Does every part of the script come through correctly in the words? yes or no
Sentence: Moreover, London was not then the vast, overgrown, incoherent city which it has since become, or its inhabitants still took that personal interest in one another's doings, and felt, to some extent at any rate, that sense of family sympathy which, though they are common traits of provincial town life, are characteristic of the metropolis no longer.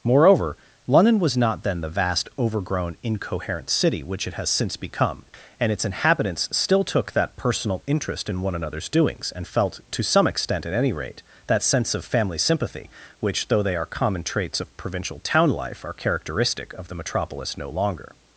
no